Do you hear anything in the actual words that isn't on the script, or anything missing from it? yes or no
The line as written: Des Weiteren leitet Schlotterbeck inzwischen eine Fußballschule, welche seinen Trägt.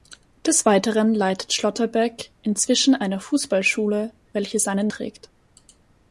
no